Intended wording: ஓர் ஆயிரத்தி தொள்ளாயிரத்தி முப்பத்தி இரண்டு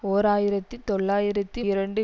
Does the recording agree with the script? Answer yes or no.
no